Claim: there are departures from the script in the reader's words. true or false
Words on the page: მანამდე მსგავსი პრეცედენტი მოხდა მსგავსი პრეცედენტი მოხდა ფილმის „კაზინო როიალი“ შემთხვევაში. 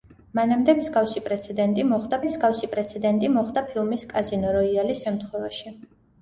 false